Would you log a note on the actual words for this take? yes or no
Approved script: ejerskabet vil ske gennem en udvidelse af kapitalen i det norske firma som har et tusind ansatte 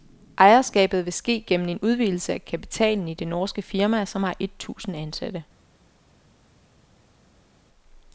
no